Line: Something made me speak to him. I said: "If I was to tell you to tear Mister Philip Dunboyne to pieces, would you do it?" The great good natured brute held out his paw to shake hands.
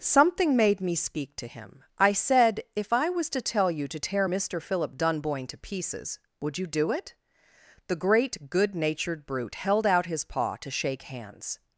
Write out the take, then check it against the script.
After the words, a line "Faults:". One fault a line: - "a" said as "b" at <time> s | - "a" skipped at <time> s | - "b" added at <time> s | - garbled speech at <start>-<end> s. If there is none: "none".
Something made me speak to him. I said: "If I was to tell you to tear Mister Philip Dunboyne to pieces, would you do it?" The great good natured brute held out his paw to shake hands.
Faults:
none